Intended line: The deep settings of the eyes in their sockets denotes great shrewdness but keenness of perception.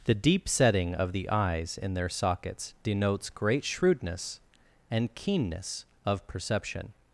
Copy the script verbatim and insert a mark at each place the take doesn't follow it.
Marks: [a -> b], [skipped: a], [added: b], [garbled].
The deep [settings -> setting] of the eyes in their sockets denotes great shrewdness [but -> and] keenness of perception.